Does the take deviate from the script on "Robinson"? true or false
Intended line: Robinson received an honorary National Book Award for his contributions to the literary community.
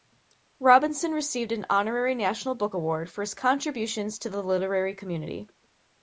false